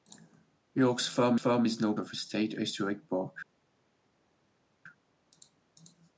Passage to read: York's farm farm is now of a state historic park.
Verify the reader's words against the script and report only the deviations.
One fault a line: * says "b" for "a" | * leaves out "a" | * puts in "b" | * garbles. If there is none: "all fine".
all fine